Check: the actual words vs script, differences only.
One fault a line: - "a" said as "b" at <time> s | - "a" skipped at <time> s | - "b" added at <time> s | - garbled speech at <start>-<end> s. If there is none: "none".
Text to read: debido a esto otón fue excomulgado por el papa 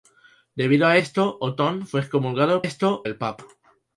- "por" said as "esto" at 2.6 s